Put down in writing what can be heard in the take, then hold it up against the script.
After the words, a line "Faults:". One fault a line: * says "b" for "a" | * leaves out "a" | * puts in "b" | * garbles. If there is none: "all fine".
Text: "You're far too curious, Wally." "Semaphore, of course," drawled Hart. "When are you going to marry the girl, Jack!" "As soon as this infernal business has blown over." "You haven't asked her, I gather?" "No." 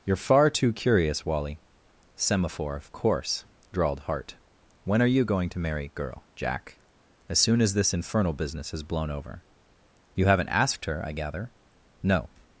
"You're far too curious, Wally." "Semaphore, of course," drawled Hart. "When are you going to marry girl, Jack!" "As soon as this infernal business has blown over." "You haven't asked her, I gather?" "No."
Faults:
* leaves out "the"